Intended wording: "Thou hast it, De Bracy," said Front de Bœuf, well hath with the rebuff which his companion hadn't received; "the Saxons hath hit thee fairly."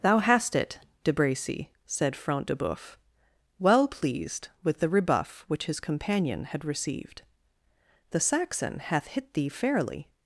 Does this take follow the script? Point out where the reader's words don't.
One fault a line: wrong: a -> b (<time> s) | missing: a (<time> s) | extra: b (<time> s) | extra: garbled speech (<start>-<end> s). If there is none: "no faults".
wrong: hath -> pleased (3.9 s)
wrong: hadn't -> had (6.4 s)
wrong: Saxons -> Saxon (8.2 s)